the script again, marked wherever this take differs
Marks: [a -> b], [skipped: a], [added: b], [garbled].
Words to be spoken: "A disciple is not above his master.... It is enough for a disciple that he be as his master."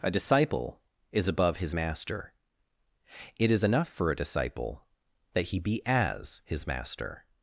"A disciple is [skipped: not] above his master.... It is enough for a disciple that he be as his master."